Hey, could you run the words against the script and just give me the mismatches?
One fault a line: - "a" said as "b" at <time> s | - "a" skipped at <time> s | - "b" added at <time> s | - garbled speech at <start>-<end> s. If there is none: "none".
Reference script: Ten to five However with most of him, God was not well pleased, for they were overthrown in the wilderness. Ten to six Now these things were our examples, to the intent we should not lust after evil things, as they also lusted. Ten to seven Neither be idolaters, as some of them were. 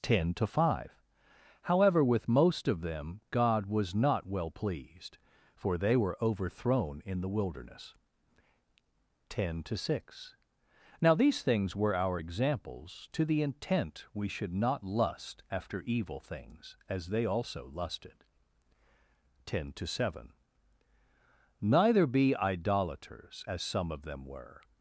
- "him" said as "them" at 2.8 s